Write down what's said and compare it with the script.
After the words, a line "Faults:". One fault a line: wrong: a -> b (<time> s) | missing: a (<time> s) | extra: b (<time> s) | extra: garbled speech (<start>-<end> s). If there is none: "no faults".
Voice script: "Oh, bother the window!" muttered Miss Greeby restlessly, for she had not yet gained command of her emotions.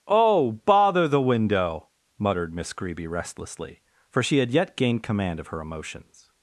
"Oh, bother the window!" muttered Miss Greeby restlessly, for she had yet gained command of her emotions.
Faults:
missing: not (4.5 s)